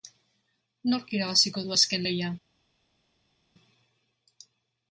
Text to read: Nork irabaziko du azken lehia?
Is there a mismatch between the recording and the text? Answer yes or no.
no